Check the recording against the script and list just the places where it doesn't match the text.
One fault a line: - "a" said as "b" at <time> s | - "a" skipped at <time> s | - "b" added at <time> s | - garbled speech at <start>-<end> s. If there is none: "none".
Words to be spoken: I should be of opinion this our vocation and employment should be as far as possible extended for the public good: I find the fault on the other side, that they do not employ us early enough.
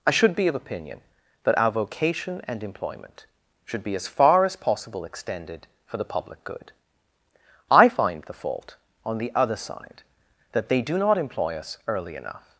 - "this" said as "that" at 1.4 s